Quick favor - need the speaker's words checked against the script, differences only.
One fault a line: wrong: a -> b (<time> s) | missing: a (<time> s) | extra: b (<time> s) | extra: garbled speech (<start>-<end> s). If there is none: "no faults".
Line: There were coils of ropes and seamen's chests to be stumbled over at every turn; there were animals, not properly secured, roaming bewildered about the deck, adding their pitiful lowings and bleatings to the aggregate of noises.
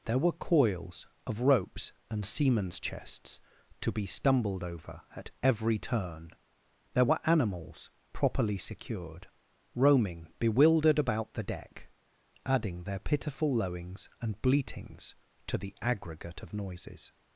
missing: not (7.9 s)